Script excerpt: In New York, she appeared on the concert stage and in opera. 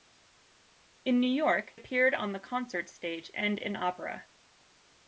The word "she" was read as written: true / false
false